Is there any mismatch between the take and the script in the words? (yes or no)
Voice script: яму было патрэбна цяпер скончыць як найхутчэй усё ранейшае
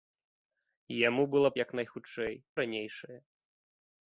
yes